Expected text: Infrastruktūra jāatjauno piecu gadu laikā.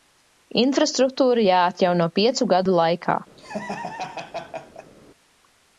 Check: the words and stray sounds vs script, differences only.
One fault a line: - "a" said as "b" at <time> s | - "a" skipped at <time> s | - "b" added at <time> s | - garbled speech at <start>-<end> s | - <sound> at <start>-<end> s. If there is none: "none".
- laugh at 3.4-4.9 s